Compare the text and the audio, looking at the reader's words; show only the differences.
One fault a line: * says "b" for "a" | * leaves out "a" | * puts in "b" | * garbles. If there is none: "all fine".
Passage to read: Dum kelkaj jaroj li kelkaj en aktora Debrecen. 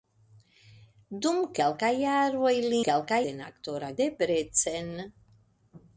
all fine